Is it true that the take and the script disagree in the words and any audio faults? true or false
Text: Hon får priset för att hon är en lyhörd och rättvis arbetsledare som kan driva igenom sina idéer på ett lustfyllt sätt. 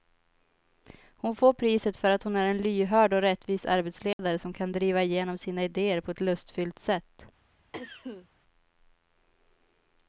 true